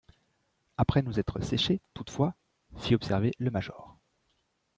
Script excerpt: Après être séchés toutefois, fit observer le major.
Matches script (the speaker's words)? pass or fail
fail